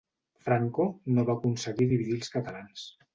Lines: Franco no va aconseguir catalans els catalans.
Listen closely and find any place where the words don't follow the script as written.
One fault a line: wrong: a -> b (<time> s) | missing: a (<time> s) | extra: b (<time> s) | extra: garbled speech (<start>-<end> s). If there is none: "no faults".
wrong: catalans -> dividir (1.9 s)